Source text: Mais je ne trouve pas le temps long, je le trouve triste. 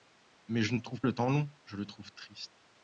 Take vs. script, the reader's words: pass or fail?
fail